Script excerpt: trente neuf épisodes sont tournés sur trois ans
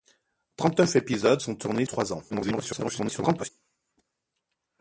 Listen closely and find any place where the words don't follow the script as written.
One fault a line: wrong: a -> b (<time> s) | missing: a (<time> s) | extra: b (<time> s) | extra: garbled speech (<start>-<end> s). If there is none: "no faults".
missing: sur (1.8 s)
extra: garbled speech (2.3-3.5 s)